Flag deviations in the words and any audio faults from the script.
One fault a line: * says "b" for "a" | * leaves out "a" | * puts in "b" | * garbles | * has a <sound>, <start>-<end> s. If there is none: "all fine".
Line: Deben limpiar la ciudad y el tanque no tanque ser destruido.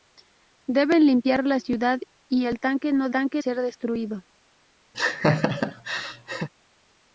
* has a laugh, 4.9-6.5 s